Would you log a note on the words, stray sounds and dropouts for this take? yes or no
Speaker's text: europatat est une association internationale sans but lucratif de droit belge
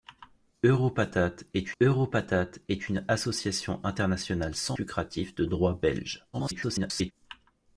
yes